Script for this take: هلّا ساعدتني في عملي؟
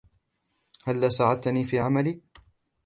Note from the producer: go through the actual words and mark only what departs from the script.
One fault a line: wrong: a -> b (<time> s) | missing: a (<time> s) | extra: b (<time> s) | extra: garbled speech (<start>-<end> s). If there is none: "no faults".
no faults